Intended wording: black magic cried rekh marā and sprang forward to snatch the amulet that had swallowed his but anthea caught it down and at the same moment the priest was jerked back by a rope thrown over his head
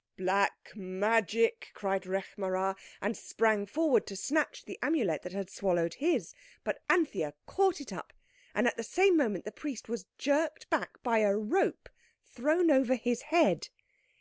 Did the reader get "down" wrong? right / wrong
wrong